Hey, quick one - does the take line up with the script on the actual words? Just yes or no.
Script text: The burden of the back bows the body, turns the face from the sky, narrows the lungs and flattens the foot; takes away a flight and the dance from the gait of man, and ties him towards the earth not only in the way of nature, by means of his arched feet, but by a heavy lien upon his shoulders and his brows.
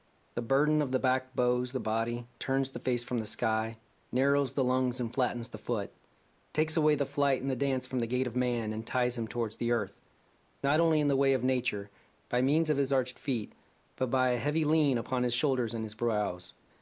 no